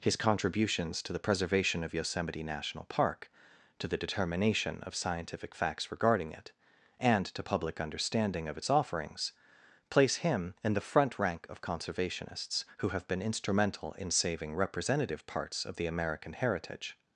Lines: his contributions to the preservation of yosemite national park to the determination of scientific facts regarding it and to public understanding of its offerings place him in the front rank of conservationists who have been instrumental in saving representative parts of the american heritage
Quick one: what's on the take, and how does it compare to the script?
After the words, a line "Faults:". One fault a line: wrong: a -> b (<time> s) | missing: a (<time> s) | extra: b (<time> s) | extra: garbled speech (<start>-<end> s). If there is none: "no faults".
his contributions to the preservation of yosemite national park to the determination of scientific facts regarding it and to public understanding of its offerings place him in the front rank of conservationists who have been instrumental in saving representative parts of the american heritage
Faults:
no faults